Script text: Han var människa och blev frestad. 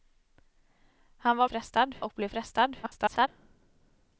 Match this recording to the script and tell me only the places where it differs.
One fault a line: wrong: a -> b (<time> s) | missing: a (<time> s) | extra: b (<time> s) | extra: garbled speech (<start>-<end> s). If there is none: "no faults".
wrong: människa -> frestad (1.4 s)
extra: garbled speech (2.8-3.3 s)